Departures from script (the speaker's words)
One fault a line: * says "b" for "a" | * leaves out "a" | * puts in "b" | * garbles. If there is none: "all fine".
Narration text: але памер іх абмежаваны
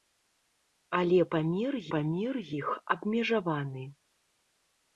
* puts in "памер"